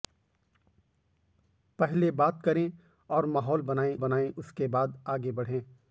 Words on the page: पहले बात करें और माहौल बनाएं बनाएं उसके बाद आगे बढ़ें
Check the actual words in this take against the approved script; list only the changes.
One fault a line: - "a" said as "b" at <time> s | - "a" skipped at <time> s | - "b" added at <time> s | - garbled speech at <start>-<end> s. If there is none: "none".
none